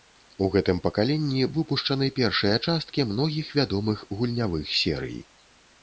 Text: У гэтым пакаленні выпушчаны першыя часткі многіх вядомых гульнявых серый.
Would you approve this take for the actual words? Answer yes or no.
yes